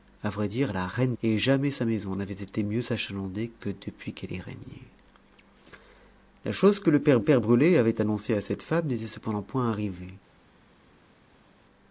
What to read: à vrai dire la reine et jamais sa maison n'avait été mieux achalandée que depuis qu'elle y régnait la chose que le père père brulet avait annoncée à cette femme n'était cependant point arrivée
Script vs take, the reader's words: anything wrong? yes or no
no